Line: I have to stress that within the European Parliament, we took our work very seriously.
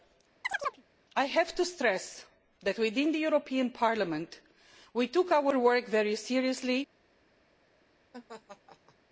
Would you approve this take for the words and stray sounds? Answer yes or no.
no